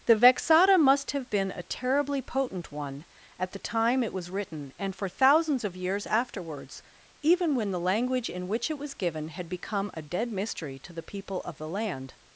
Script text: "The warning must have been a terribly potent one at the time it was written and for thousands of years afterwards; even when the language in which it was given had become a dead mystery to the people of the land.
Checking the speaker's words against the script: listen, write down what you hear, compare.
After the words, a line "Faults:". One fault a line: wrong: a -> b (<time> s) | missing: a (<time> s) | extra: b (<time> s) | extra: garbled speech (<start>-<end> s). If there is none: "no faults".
"The vexata must have been a terribly potent one at the time it was written and for thousands of years afterwards; even when the language in which it was given had become a dead mystery to the people of the land.
Faults:
wrong: warning -> vexata (0.1 s)